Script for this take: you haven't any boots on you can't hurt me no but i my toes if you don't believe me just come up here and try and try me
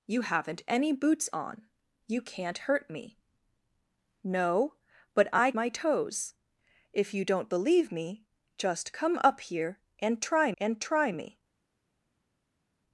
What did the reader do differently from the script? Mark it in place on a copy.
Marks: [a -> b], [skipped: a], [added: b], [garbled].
you haven't any boots on you can't hurt me no but i my toes if you don't believe me just come up here and try and try me